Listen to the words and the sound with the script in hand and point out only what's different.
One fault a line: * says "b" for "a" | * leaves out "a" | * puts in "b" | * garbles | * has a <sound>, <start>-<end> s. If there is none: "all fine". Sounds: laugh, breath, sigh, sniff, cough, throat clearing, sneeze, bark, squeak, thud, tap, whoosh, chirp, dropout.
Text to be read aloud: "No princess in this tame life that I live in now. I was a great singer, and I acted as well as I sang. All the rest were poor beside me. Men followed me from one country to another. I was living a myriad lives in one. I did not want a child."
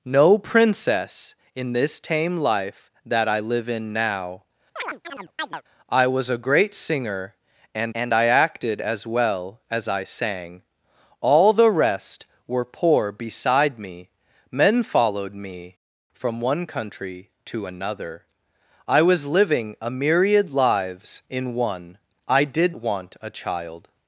* has a chirp, 4.8-5.6 s
* puts in "and"
* leaves out "not"